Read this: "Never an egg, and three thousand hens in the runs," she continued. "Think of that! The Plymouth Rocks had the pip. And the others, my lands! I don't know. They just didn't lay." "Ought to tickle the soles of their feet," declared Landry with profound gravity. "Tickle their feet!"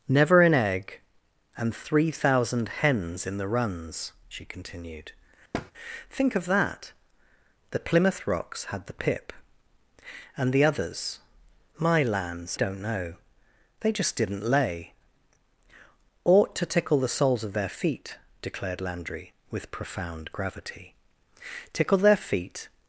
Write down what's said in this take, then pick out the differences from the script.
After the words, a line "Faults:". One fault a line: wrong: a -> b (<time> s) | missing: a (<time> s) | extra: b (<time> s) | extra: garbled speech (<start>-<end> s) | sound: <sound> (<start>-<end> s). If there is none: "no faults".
"Never an egg, and three thousand hens in the runs," she continued. "Think of that! The Plymouth Rocks had the pip. And the others, my lands! don't know. They just didn't lay." "Ought to tickle the soles of their feet," declared Landry with profound gravity. "Tickle their feet!"
Faults:
sound: thud (5.5-5.7 s)
missing: I (12.6 s)